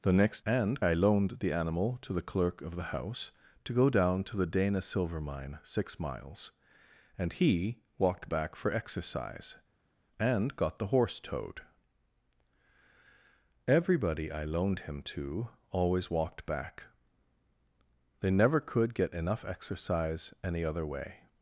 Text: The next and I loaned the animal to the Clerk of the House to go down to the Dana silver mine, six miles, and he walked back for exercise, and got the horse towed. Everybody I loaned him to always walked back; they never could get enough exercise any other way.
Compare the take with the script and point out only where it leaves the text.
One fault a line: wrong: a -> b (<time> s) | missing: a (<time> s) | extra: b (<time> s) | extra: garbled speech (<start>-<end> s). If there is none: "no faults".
no faults